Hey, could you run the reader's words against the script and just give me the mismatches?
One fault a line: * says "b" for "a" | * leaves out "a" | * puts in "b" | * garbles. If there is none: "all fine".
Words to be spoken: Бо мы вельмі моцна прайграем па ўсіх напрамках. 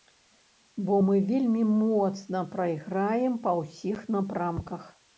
all fine